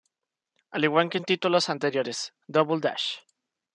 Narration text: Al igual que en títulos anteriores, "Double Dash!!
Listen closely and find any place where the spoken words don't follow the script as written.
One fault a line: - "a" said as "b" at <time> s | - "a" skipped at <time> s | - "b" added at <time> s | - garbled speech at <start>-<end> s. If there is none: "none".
none